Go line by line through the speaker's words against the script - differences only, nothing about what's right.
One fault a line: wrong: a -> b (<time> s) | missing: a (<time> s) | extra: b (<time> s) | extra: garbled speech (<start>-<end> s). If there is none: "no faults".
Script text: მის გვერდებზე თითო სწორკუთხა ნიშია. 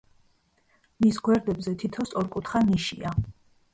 no faults